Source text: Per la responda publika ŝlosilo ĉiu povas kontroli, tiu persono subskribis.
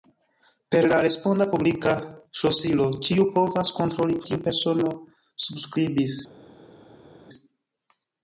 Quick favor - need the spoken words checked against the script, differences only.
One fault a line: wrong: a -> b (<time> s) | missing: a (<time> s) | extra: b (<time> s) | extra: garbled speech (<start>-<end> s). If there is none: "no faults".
no faults